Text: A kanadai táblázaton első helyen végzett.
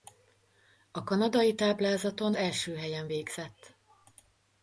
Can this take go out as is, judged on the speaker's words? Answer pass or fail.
pass